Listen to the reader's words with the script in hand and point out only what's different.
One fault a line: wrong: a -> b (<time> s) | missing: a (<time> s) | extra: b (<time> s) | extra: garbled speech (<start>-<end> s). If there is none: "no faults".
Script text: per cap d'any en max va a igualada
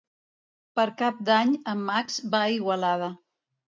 no faults